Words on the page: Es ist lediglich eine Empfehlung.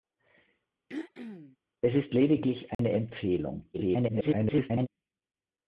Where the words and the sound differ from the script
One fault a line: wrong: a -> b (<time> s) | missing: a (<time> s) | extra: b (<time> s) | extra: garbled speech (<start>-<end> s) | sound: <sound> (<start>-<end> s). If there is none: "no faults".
sound: throat clearing (0.9-1.6 s)
sound: dropout (2.7-2.8 s)
extra: garbled speech (3.7-4.9 s)